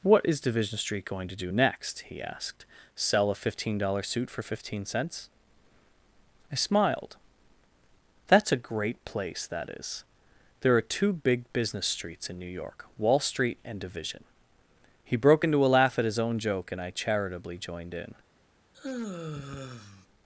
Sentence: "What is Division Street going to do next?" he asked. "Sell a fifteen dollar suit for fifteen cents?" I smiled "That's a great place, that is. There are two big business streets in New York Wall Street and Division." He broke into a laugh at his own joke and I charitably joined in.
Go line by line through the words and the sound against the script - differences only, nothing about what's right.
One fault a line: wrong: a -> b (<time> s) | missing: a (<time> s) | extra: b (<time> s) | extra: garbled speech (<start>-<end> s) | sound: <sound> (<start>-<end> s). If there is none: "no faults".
sound: sigh (18.7-20.1 s)